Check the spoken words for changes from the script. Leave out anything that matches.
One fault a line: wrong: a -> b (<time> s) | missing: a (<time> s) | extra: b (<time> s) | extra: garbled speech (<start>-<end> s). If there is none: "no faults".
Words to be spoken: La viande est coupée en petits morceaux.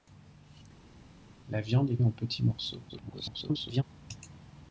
missing: coupée (2.0 s)
extra: garbled speech (2.9-3.8 s)